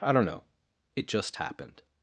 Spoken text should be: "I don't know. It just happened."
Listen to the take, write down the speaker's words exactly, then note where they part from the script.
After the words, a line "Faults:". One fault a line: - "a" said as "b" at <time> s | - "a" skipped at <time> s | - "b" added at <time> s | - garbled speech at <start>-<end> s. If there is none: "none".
"I don't know. It just happened."
Faults:
none